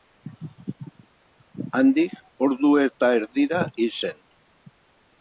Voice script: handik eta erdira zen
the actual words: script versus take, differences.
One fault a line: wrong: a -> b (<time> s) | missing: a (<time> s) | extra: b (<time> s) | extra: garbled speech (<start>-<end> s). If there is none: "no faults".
extra: ordu (2.5 s)
extra: hil (3.8 s)